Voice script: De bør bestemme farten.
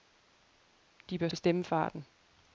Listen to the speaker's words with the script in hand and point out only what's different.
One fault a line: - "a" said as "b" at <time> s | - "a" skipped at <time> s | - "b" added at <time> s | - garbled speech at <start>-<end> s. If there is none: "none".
none